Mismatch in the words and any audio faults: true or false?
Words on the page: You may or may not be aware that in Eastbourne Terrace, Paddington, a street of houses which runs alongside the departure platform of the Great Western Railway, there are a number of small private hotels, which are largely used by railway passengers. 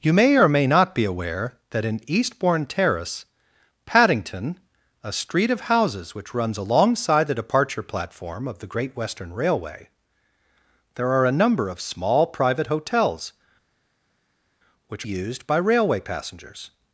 true